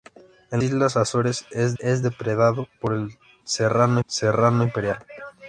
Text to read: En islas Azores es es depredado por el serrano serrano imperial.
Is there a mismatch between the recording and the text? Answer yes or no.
no